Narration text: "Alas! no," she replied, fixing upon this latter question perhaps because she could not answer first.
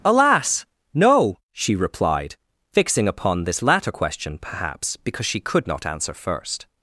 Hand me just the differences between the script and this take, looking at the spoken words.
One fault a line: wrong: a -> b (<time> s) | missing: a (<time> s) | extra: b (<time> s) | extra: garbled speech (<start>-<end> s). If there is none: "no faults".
no faults